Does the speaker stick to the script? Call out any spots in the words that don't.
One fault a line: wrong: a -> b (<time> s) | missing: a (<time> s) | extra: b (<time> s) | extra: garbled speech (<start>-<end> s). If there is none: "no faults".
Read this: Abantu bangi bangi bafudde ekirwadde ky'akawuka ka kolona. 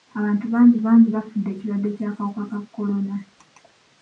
no faults